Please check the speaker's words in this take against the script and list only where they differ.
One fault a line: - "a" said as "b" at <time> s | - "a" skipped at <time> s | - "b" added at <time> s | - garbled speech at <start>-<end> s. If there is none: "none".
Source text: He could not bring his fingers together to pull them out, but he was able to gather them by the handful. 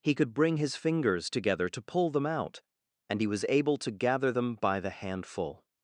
- "not" skipped at 0.3 s
- "but" said as "and" at 3.1 s